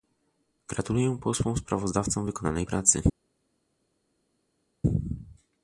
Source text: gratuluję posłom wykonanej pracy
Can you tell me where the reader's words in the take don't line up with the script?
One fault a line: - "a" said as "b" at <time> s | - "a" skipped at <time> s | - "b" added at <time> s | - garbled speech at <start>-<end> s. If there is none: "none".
- "sprawozdawcom" added at 1.6 s